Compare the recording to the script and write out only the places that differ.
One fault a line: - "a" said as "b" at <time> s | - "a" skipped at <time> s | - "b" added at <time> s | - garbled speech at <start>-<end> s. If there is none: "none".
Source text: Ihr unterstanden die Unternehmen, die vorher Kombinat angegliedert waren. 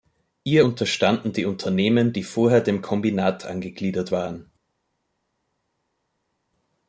- "dem" added at 2.6 s